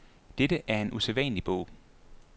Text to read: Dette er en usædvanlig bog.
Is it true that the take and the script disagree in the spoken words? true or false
false